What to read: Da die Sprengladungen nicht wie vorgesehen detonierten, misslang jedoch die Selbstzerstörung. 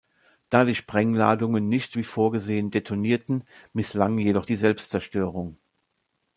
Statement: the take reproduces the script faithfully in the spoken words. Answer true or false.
true